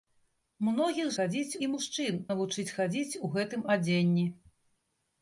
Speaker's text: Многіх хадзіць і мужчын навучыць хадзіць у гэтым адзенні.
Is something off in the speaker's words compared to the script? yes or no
no